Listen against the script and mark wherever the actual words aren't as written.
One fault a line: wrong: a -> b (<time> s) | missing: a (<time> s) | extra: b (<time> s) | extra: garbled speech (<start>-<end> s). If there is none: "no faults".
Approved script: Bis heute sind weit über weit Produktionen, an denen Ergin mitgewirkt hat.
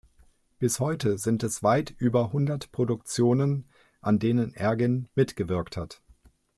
extra: es (1.4 s)
wrong: weit -> hundert (2.3 s)